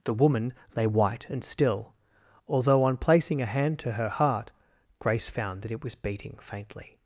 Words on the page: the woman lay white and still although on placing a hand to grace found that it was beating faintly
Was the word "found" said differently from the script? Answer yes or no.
no